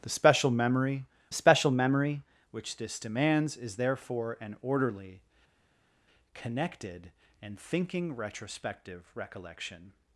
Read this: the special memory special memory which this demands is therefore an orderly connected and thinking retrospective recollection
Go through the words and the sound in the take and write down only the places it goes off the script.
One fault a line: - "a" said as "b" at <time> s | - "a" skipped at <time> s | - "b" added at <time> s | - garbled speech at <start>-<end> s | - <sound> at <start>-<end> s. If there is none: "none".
none